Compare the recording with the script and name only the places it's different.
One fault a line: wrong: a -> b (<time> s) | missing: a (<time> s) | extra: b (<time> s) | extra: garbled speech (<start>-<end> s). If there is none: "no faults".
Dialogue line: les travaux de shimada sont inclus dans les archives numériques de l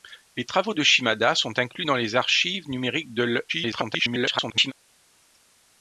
extra: garbled speech (3.5-4.7 s)